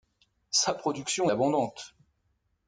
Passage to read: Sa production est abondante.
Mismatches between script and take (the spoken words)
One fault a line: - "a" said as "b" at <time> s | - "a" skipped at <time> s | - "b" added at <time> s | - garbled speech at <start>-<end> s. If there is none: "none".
- "est" skipped at 1.3 s